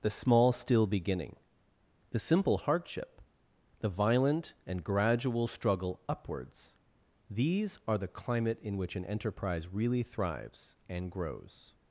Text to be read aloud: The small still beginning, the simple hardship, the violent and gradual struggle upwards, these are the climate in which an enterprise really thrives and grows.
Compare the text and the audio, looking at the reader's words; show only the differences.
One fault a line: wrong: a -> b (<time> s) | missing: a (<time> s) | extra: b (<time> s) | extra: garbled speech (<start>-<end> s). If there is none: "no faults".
no faults